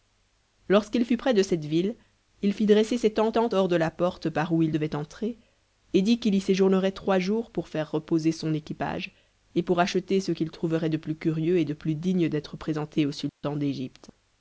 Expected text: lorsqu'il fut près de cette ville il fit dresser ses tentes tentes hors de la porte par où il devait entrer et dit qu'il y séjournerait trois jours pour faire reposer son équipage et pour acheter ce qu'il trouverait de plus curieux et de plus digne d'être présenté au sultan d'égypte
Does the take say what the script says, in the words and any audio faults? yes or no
no